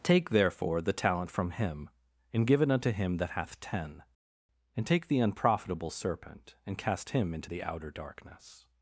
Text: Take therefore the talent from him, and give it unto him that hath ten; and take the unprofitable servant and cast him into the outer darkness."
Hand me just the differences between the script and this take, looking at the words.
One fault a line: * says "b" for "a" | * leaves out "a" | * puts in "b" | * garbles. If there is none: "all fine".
* says "serpent" for "servant"